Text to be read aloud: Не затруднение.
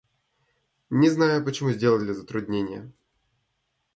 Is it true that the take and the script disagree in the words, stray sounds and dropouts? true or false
true